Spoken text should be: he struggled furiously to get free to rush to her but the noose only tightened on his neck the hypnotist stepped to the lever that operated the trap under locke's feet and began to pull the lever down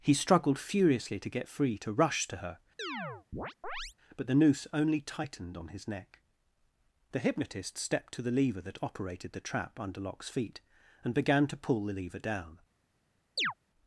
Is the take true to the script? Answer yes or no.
yes